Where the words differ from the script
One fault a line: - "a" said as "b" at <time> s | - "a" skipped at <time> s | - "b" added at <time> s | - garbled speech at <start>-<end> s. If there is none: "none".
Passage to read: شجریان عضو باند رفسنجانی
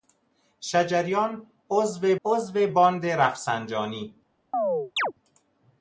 - "عضو" added at 2.2 s